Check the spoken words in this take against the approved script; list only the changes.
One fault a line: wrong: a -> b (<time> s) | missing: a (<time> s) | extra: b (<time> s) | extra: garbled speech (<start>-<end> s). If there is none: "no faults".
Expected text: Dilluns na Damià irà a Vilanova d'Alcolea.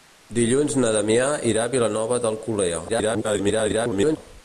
extra: garbled speech (2.9-4.2 s)